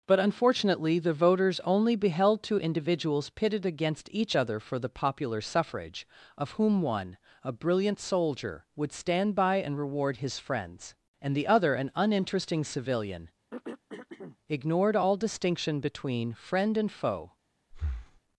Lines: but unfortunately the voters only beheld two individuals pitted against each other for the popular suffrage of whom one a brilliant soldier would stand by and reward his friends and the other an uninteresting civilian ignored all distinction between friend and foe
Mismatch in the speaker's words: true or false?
false